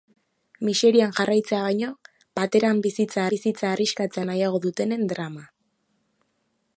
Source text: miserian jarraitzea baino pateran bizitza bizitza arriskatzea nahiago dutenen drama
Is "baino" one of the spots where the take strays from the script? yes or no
no